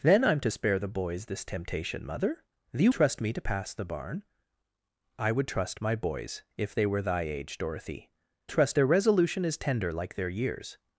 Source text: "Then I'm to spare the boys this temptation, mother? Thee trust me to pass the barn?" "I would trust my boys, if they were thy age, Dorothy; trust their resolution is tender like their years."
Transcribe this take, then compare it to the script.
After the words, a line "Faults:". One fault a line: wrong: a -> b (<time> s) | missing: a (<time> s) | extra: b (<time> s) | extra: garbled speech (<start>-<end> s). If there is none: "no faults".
"Then I'm to spare the boys this temptation, mother? Thee trust me to pass the barn?" "I would trust my boys, if they were thy age, Dorothy; trust their resolution is tender like their years."
Faults:
no faults